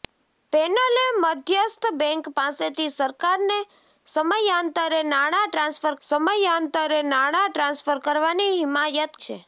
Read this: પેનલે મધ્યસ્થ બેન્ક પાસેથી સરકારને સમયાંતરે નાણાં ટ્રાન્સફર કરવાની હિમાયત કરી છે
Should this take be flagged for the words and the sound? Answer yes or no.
yes